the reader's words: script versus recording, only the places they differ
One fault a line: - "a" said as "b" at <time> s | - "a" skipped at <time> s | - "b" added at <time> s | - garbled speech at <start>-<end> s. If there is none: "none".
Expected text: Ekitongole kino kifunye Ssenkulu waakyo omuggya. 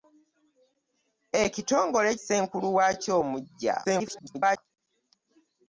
- "kino kifunye" skipped at 2.1 s
- garbled speech at 3.8-4.6 s